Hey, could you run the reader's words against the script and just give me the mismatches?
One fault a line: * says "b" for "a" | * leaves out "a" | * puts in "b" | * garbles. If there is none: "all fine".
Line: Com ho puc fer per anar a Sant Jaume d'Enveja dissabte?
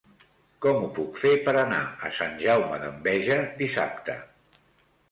all fine